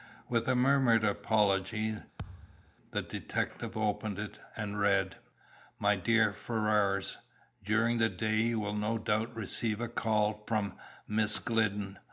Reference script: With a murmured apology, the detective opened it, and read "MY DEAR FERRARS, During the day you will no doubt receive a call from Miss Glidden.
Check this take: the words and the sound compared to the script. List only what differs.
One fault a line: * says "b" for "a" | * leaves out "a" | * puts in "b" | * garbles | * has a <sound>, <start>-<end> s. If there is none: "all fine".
* has a thud, 2.2-2.7 s